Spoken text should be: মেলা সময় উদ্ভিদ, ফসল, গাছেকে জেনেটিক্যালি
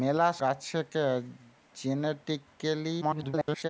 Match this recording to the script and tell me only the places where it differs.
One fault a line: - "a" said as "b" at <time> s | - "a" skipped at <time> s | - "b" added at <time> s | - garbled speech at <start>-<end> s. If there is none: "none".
- "সময় উদ্ভিদ ফসল" skipped at 0.3 s
- garbled speech at 3.0-3.7 s